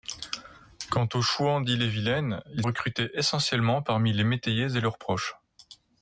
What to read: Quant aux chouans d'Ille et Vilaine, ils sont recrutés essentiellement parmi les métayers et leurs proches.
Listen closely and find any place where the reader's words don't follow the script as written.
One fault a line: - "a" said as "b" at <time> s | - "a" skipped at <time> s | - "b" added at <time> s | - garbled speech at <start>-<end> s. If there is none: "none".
- "sont" skipped at 2.6 s